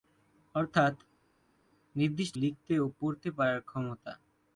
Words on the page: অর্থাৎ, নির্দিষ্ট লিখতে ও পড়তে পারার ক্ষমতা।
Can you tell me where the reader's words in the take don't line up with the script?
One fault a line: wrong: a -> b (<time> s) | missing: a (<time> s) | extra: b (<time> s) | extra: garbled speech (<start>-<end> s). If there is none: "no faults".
no faults